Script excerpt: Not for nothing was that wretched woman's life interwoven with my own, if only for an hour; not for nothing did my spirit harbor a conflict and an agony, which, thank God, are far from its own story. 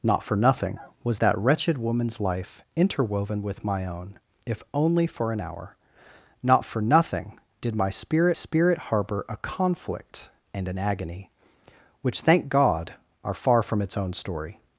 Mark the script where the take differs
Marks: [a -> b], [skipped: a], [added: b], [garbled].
Not for nothing was that wretched woman's life interwoven with my own, if only for an hour; not for nothing did my spirit [added: spirit] harbor a conflict and an agony, which, thank God, are far from its own story.